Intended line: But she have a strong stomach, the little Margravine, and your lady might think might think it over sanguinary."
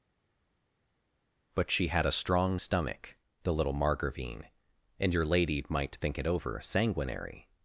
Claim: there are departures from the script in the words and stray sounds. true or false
true